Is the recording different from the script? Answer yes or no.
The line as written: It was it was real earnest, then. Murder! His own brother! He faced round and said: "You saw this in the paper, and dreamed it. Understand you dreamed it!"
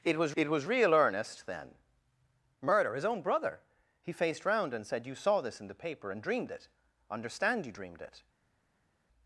no